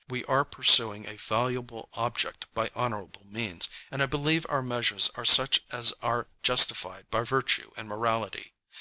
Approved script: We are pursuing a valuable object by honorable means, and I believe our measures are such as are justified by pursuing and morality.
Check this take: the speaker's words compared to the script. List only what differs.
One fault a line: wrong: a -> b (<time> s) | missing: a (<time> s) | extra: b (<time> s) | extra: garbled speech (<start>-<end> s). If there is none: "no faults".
wrong: pursuing -> virtue (7.2 s)